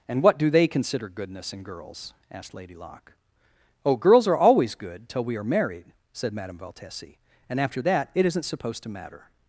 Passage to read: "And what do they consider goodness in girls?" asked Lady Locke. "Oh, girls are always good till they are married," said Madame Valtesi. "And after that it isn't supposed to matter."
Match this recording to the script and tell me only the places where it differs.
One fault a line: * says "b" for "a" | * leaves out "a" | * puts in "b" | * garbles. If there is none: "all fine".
* says "we" for "they"